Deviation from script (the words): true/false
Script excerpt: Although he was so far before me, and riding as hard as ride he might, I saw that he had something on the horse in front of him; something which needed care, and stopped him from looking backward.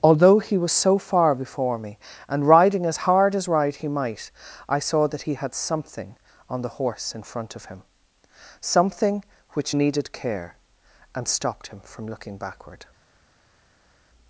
false